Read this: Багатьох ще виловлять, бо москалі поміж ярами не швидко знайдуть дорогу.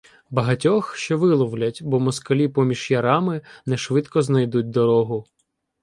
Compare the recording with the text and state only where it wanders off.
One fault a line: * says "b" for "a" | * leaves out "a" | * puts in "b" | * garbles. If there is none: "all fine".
all fine